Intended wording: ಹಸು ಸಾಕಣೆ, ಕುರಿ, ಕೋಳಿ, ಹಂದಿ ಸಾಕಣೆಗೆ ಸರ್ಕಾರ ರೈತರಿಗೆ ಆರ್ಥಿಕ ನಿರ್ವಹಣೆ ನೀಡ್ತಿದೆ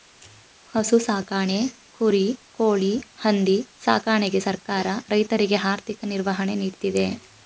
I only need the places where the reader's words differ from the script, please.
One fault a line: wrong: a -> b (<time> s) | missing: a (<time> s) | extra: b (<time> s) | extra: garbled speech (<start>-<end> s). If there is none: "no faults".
no faults